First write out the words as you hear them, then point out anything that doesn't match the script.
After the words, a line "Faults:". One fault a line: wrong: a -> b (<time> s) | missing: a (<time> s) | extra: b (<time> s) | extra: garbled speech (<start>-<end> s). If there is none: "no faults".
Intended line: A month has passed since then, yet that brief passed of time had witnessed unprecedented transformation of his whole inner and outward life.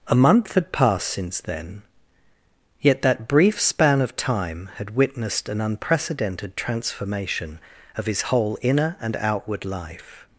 A month had passed since then, yet that brief span of time had witnessed an unprecedented transformation of his whole inner and outward life.
Faults:
wrong: has -> had (0.5 s)
wrong: passed -> span (3.6 s)
extra: an (5.5 s)